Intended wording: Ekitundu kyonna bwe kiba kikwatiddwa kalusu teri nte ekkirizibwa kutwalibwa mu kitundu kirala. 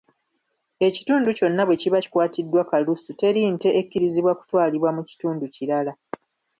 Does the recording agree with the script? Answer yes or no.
yes